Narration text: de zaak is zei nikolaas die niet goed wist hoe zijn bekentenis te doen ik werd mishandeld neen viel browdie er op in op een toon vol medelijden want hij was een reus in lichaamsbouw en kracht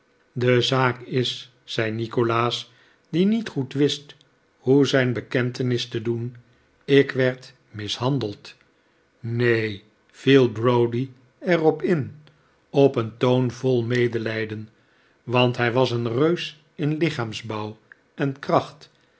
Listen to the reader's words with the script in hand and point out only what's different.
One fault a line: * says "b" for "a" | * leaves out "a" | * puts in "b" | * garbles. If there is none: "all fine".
all fine